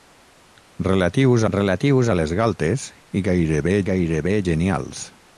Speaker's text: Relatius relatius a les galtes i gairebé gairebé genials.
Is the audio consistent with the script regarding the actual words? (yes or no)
yes